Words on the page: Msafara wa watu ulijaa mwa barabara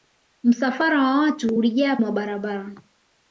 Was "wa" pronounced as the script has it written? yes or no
yes